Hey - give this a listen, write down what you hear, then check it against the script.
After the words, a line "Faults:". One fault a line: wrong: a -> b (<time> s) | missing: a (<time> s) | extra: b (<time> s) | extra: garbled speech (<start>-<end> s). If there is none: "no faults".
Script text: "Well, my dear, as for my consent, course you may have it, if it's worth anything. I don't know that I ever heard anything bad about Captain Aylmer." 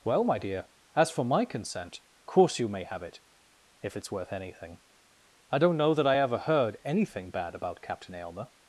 "Well, my dear, as for my consent, course you may have it, if it's worth anything. I don't know that I ever heard anything bad about Captain Aylmer."
Faults:
no faults